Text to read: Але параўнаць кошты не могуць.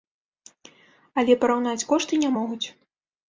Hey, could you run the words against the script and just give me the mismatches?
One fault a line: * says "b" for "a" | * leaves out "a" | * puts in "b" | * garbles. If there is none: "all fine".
all fine